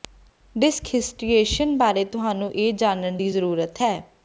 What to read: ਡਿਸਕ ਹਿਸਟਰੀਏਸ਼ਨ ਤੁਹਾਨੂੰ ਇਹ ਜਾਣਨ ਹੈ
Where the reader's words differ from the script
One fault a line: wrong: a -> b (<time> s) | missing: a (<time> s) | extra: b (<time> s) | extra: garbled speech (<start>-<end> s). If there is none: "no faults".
extra: ਬਾਰੇ (1.8 s)
extra: ਦੀ ਜ਼ਰੂਰਤ (3.2 s)